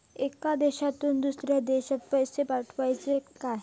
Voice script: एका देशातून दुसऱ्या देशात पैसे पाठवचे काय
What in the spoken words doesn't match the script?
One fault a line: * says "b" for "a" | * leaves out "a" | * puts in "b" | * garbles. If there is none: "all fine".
all fine